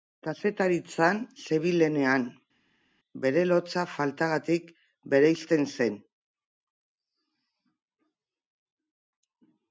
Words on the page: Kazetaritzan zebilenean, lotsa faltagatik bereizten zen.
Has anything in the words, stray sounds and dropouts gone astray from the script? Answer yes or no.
yes